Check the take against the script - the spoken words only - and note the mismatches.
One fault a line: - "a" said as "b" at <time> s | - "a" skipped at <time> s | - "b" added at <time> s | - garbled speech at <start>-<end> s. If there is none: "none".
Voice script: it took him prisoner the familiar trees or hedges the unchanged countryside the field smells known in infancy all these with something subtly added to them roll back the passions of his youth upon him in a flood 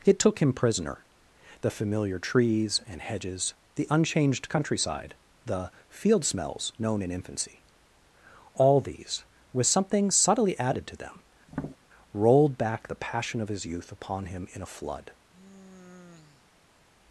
- "or" said as "and" at 2.9 s
- "roll" said as "rolled" at 12.1 s
- "passions" said as "passion" at 13.0 s